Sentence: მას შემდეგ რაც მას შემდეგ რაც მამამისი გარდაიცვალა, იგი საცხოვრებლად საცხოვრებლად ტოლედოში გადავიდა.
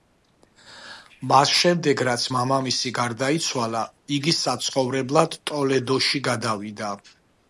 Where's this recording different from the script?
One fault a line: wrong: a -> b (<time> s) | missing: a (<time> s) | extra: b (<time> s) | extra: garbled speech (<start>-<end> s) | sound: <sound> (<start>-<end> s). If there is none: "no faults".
missing: მას შემდეგ რაც (2.2 s)
missing: საცხოვრებლად (5.4 s)